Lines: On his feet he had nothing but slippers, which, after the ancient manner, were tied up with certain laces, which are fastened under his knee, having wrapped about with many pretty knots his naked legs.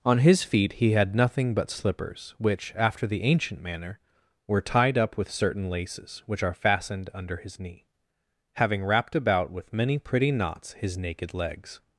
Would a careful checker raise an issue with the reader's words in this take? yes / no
no